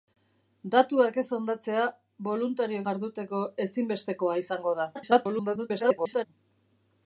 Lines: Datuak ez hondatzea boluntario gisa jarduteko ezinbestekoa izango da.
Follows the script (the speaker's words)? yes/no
no